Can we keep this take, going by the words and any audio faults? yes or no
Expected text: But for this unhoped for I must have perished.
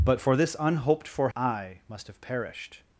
yes